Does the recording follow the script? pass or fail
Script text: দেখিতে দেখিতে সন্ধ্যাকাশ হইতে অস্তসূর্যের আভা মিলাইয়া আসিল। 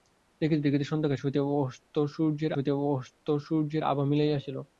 fail